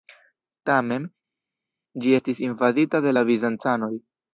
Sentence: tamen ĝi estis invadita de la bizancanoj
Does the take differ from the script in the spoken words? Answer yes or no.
no